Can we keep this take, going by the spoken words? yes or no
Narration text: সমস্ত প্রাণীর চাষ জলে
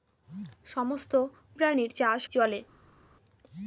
yes